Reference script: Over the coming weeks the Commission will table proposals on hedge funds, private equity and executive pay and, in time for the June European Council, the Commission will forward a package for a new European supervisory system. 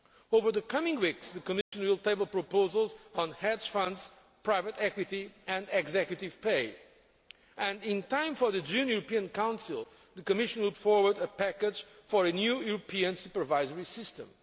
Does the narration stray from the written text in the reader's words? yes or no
no